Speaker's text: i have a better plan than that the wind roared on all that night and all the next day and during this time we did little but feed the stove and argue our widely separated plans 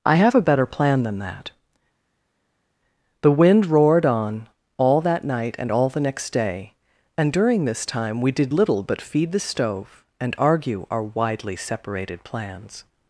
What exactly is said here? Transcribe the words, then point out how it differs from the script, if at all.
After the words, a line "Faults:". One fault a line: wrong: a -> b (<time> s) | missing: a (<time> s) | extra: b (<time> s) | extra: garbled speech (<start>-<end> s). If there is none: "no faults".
i have a better plan than that the wind roared on all that night and all the next day and during this time we did little but feed the stove and argue our widely separated plans
Faults:
no faults